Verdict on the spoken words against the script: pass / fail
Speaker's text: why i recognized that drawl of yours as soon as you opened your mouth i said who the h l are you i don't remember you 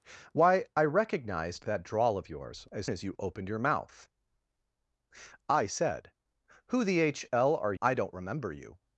fail